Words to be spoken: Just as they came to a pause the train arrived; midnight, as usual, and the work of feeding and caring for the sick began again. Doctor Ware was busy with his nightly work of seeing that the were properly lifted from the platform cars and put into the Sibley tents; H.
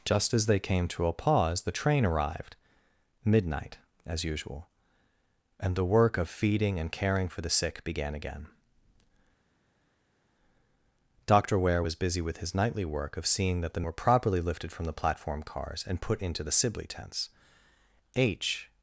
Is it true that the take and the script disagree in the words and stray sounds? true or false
false